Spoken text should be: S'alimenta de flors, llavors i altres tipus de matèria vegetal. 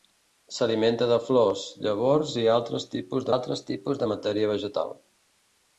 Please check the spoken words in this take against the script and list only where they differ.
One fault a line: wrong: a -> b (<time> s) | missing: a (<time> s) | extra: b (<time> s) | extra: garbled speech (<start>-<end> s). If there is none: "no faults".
extra: altres tipus (3.3 s)